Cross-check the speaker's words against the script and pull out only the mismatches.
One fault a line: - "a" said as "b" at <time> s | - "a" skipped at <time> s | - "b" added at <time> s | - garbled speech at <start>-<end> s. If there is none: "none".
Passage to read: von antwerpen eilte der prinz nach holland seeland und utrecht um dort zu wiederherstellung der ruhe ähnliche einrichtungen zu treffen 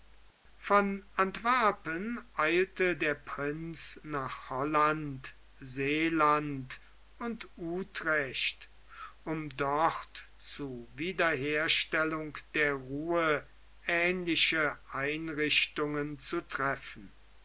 none